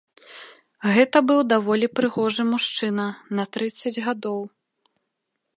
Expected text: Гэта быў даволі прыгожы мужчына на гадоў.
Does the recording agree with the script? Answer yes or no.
no